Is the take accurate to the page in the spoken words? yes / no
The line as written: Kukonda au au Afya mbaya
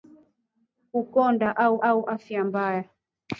yes